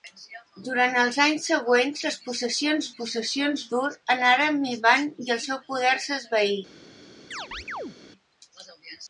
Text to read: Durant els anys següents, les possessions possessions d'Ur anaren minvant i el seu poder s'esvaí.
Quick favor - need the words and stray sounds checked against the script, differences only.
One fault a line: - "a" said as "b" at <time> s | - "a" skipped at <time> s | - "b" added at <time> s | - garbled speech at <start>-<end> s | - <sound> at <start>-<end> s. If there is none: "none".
- chirp at 7.3-8.0 s